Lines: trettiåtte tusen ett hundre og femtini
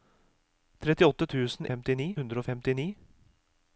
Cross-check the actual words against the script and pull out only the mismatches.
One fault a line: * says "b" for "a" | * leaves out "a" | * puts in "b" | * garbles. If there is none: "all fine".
* says "femtini" for "ett"